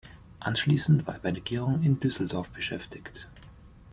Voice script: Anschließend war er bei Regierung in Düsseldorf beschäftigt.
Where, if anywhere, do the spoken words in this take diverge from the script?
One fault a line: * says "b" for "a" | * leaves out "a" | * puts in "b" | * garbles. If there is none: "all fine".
all fine